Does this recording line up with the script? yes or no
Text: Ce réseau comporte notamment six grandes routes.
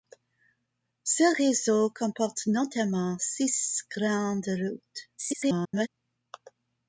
no